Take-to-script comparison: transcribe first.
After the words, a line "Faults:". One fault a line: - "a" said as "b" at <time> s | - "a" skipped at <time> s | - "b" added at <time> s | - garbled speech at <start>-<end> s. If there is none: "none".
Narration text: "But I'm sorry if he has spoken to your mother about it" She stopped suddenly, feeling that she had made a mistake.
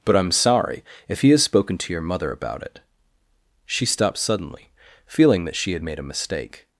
"But I'm sorry if he has spoken to your mother about it" She stopped suddenly, feeling that she had made a mistake.
Faults:
none